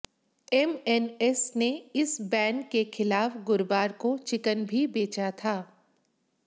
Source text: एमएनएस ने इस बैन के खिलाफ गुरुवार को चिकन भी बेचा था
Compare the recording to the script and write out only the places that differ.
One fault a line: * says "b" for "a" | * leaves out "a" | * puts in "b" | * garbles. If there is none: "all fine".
all fine